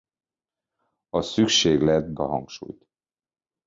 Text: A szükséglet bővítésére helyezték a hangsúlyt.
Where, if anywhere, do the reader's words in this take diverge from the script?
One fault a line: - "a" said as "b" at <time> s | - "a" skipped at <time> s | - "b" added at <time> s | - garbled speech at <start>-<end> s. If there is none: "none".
- "bővítésére helyezték" skipped at 2.1 s